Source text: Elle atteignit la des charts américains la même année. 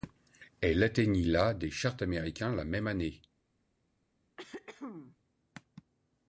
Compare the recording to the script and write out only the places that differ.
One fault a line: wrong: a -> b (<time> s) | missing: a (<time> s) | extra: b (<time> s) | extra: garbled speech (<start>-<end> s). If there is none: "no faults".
no faults